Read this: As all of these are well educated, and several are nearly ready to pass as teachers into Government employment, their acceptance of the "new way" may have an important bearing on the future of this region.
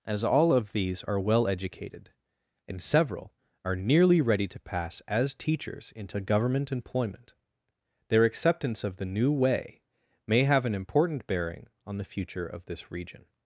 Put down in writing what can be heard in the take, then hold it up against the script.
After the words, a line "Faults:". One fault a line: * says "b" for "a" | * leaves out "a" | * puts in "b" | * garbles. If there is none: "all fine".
As all of these are well educated, and several are nearly ready to pass as teachers into Government employment, their acceptance of the "new way" may have an important bearing on the future of this region.
Faults:
all fine